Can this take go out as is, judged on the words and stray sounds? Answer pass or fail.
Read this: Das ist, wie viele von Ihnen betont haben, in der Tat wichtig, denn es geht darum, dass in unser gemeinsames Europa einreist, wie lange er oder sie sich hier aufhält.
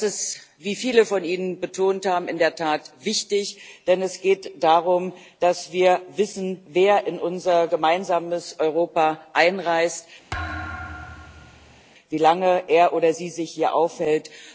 fail